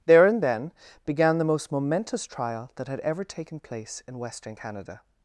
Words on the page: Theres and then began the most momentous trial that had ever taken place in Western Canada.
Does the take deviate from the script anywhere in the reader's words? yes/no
yes